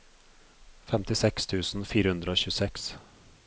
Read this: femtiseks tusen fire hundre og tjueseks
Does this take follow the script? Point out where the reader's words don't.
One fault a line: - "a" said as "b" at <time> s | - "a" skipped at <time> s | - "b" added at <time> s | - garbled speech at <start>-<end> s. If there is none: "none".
none